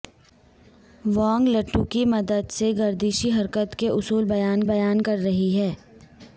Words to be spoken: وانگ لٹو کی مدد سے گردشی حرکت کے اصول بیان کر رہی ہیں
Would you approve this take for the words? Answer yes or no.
no